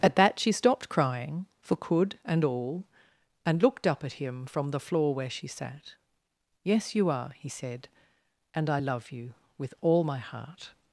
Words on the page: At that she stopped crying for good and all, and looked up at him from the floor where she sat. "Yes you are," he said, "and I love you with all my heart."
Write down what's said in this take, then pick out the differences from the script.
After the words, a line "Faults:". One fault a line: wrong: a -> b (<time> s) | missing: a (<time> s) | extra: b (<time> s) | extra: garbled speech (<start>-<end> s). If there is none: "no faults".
At that she stopped crying for could and all, and looked up at him from the floor where she sat. "Yes you are," he said, "and I love you with all my heart."
Faults:
wrong: good -> could (1.8 s)